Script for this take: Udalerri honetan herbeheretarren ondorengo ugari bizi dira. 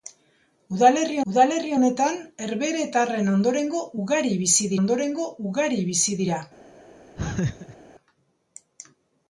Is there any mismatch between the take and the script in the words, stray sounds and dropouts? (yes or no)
yes